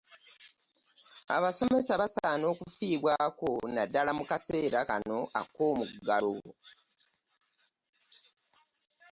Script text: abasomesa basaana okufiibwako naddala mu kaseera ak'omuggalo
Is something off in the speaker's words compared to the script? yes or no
yes